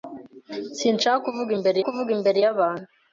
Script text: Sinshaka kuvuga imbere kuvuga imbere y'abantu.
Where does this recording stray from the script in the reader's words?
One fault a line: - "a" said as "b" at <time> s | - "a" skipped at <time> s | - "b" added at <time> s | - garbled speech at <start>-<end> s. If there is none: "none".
none